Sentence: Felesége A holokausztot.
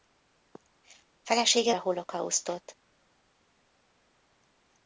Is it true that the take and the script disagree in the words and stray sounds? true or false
false